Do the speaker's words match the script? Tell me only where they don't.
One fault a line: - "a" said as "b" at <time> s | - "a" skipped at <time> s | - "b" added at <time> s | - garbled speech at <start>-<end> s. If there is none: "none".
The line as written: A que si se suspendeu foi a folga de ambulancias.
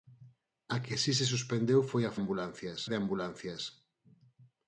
- "folga" said as "ambulancias" at 2.2 s